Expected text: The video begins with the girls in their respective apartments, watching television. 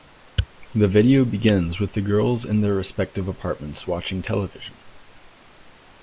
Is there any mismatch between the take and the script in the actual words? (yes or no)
no